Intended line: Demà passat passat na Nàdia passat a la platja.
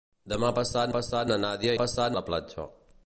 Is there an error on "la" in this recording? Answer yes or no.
no